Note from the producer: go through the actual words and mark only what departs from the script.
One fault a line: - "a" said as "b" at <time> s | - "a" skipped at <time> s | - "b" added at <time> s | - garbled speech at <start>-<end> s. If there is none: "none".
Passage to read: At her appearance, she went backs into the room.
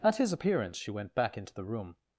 - "her" said as "his" at 0.1 s
- "backs" said as "back" at 1.1 s